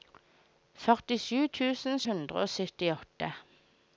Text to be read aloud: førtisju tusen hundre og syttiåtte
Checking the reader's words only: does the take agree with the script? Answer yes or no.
yes